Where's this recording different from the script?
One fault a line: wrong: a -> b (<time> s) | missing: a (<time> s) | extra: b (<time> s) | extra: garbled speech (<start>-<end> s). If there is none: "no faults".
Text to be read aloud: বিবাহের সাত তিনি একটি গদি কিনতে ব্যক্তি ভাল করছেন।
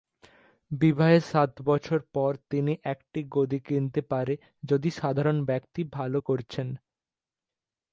extra: বছর পর (1.6 s)
extra: পারে যদি সাধারণ (4.1 s)